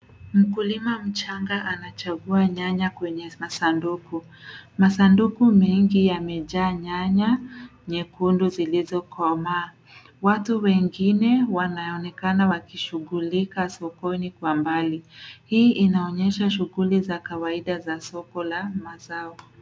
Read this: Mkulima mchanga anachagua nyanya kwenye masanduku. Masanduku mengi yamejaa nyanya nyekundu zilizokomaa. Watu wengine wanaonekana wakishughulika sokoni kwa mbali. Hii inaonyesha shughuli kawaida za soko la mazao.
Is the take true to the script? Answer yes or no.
no